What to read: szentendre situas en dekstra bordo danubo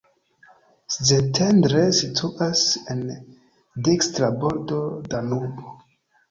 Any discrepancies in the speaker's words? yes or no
no